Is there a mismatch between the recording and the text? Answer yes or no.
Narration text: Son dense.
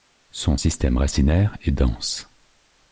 yes